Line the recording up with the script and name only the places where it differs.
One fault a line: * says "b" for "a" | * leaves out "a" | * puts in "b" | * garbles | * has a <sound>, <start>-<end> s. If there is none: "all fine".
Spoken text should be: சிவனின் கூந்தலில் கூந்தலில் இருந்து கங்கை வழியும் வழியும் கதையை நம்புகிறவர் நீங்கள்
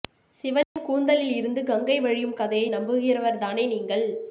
* has a dropout, 0.6-0.8 s
* leaves out "கூந்தலில்"
* leaves out "வழியும்"
* puts in "தானே"